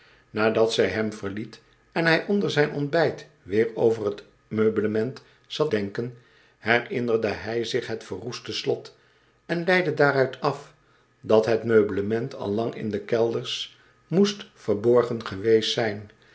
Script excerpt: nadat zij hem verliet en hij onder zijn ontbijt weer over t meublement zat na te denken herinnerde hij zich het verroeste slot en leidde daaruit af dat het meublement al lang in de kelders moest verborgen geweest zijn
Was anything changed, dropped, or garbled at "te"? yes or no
yes